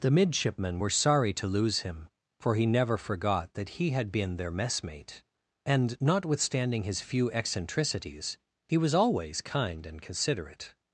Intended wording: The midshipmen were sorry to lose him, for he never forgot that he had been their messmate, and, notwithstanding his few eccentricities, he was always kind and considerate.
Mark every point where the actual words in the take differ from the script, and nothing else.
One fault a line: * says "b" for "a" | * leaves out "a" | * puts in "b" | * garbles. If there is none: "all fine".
all fine